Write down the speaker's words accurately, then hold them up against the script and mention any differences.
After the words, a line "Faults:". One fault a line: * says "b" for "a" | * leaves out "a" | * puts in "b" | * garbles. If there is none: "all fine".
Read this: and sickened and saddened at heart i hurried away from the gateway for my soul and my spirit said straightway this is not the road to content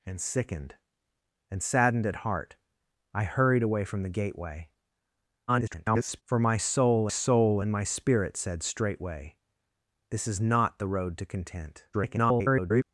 and sickened and saddened at heart i hurried away from the gateway [garbled] for my soul soul and my spirit said straightway this is not the road to content [garbled]
Faults:
* garbles
* puts in "soul"
* garbles